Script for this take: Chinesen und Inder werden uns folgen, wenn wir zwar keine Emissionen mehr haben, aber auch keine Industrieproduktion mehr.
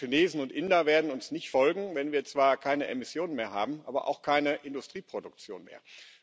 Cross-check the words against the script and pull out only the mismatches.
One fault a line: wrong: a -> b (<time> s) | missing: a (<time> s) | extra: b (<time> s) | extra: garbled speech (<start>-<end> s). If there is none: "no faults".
extra: nicht (1.3 s)